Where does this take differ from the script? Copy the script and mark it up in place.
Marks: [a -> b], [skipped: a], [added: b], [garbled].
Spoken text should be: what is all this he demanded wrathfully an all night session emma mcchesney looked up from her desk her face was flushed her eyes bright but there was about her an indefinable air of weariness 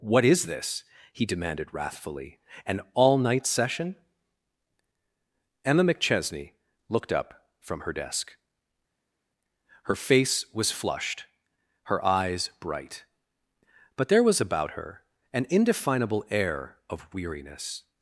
what is [skipped: all] this he demanded wrathfully an all night session emma mcchesney looked up from her desk her face was flushed her eyes bright but there was about her an indefinable air of weariness